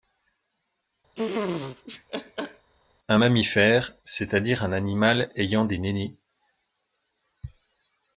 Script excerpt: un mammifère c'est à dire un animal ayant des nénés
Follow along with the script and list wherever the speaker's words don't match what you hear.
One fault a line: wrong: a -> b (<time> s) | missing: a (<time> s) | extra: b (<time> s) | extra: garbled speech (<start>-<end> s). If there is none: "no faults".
no faults